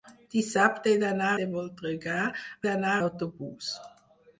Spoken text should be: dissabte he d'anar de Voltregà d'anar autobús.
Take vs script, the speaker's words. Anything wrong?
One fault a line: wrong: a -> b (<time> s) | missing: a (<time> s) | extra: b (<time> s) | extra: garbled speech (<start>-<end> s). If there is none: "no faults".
no faults